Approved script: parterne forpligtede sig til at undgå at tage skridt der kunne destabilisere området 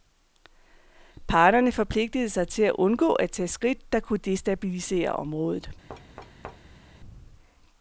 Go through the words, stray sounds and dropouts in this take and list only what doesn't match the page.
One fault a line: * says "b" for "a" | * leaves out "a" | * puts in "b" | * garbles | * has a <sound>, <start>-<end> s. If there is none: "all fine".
* has a thud, 5.9-7.0 s